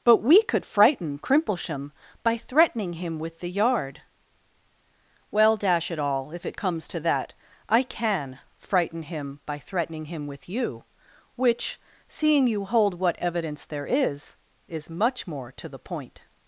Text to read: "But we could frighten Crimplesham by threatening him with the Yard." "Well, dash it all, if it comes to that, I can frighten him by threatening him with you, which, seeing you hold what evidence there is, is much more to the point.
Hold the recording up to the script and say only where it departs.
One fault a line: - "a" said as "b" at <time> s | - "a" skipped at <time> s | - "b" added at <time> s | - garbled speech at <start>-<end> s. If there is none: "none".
none